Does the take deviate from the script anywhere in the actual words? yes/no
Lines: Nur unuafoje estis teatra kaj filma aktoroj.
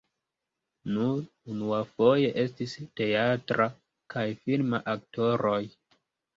no